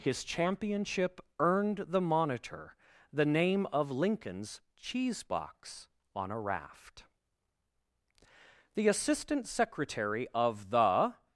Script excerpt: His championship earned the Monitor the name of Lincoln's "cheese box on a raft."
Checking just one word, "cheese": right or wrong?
right